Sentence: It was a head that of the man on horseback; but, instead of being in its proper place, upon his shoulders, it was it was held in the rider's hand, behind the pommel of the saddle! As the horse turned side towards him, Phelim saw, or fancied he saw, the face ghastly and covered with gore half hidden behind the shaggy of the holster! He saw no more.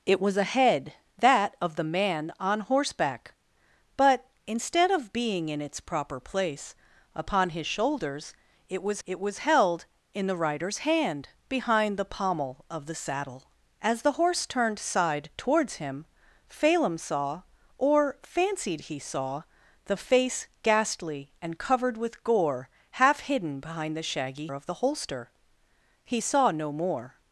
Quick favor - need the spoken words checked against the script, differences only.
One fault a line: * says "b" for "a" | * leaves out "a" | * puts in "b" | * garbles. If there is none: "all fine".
all fine